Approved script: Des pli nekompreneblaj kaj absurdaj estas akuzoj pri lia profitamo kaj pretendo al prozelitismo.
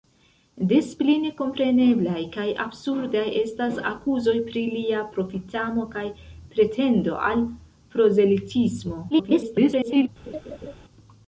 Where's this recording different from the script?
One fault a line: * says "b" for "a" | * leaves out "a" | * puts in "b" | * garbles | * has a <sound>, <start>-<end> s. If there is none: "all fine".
* garbles
* has a laugh, 10.3-10.7 s